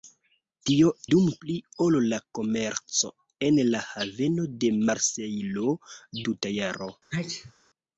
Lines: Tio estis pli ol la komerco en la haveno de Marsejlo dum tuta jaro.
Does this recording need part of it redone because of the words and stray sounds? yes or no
yes